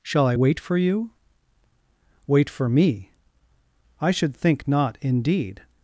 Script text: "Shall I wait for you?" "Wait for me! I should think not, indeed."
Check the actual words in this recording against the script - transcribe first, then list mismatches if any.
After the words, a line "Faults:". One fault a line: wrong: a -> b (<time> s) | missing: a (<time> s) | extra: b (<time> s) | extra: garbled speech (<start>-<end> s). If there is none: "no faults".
"Shall I wait for you?" "Wait for me! I should think not, indeed."
Faults:
no faults